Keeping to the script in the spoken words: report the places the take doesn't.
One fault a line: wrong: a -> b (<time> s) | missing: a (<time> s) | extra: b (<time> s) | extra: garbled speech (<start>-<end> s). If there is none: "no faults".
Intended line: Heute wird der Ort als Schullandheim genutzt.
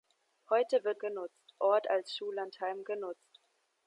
wrong: der -> genutzt (1.0 s)